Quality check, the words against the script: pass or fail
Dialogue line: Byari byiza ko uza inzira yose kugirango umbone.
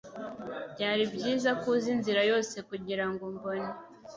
pass